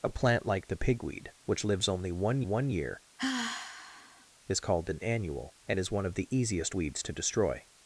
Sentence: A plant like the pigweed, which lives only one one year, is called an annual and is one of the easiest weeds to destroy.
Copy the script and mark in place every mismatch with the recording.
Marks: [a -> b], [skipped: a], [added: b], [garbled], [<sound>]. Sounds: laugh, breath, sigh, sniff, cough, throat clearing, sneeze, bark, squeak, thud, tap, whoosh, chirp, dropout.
A plant like the pigweed, which lives only one one year, [sigh] is called an annual and is one of the easiest weeds to destroy.